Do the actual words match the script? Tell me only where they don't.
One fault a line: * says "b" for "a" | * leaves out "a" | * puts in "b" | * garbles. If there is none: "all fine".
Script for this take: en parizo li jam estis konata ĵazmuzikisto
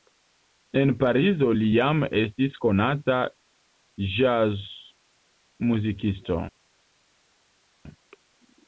all fine